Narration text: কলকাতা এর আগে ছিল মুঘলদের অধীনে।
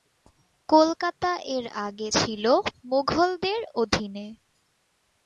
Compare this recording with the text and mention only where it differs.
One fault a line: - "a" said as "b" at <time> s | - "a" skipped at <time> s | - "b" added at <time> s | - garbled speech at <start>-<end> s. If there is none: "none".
none